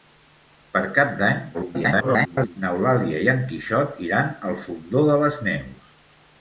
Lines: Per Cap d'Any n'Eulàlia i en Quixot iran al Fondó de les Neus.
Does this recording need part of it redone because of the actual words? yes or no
yes